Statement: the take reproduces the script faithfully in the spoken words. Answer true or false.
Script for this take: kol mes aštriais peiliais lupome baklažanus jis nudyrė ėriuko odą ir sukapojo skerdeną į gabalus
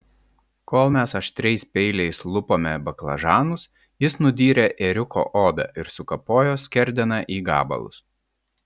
true